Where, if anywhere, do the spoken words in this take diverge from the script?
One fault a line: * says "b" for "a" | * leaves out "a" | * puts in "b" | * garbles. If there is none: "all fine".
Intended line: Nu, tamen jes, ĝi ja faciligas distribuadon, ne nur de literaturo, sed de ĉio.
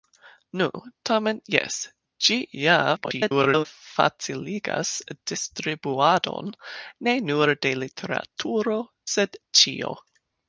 * garbles
* leaves out "de"